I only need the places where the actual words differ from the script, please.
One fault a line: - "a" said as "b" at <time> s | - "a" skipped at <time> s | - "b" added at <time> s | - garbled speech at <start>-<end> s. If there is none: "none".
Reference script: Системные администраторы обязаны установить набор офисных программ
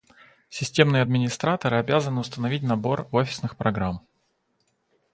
none